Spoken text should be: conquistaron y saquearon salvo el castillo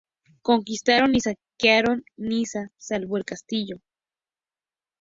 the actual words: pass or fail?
fail